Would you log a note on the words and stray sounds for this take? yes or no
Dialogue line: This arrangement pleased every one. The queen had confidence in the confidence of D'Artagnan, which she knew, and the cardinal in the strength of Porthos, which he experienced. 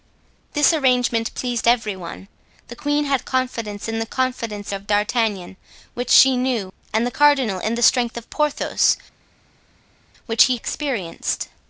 no